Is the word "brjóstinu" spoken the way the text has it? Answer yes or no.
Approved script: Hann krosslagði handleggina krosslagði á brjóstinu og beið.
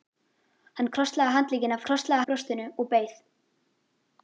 yes